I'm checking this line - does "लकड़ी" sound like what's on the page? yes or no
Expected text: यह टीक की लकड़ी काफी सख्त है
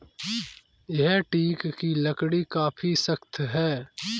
yes